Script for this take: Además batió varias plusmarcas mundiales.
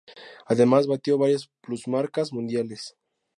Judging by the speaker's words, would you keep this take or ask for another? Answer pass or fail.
pass